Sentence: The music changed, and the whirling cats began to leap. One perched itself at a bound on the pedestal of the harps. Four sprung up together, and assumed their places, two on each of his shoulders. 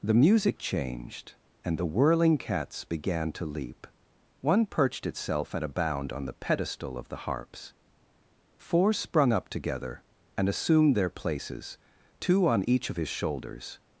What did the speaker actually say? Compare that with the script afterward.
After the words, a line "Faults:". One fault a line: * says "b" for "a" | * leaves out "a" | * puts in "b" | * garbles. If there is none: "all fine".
The music changed, and the whirling cats began to leap. One perched itself at a bound on the pedestal of the harps. Four sprung up together, and assumed their places, two on each of his shoulders.
Faults:
all fine